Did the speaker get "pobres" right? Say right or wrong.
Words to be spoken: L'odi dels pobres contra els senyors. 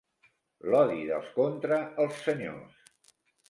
wrong